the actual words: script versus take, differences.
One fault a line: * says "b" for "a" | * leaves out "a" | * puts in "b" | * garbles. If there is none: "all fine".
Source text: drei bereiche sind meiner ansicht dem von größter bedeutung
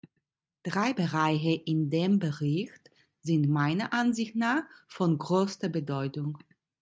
* puts in "in dem bericht"
* says "nach" for "dem"